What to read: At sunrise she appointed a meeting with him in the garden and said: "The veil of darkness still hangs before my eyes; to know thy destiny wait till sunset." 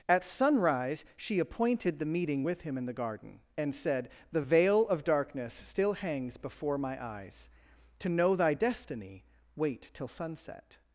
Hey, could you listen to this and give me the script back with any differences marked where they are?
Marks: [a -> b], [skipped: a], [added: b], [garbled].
At sunrise she appointed [a -> the] meeting with him in the garden and said: "The veil of darkness still hangs before my eyes; to know thy destiny wait till sunset."